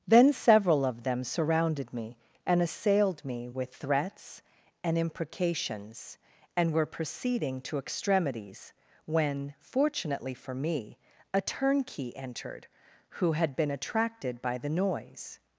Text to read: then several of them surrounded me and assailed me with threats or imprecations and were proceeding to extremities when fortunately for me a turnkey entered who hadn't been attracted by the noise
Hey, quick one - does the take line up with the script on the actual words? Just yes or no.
no